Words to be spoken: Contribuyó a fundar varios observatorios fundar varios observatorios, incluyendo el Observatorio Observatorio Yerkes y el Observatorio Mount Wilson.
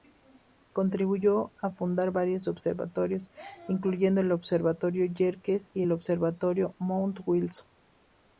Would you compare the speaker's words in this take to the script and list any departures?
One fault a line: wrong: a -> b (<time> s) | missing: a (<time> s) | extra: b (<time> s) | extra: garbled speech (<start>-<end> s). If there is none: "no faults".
missing: fundar varios observatorios (3.3 s)
missing: Observatorio (5.0 s)